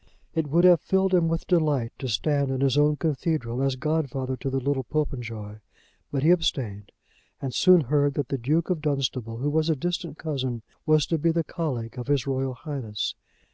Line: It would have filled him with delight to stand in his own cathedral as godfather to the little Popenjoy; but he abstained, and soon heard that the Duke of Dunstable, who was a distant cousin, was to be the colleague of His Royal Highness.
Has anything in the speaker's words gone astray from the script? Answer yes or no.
no